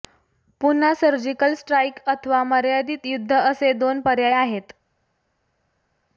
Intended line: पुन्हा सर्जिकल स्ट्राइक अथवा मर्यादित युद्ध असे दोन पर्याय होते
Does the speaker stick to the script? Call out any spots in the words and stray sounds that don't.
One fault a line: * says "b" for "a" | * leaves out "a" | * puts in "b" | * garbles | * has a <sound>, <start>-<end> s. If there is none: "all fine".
* says "आहेत" for "होते"